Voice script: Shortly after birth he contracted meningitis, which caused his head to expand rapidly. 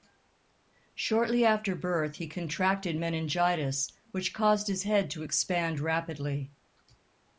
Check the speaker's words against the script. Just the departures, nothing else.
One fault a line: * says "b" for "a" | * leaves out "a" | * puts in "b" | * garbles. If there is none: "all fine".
all fine